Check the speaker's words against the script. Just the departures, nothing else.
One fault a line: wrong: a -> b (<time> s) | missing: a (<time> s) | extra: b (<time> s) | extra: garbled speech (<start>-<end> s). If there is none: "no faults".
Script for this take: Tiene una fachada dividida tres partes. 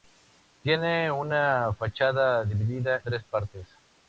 no faults